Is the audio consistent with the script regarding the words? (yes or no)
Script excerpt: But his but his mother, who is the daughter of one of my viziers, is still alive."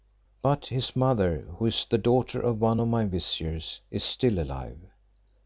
no